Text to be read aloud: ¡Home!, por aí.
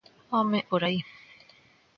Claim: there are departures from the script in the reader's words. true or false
false